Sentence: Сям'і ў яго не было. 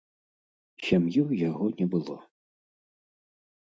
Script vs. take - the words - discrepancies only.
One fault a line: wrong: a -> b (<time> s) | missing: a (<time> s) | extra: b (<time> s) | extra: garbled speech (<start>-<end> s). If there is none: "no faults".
no faults